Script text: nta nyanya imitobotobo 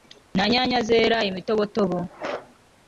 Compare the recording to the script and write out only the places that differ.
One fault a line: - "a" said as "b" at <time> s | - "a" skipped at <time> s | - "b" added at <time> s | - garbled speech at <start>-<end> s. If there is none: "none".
- "zera" added at 0.9 s